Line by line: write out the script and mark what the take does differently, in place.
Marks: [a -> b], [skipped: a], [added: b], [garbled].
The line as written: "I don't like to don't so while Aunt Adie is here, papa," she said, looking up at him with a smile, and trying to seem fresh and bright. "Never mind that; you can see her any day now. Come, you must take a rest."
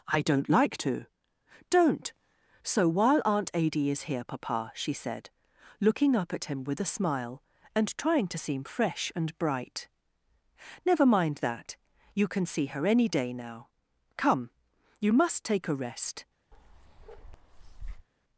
"I don't like to don't so while Aunt Adie is here, papa," she said, looking up at him with a smile, and trying to seem fresh and bright. "Never mind that; you can see her any day now. Come, you must take a rest."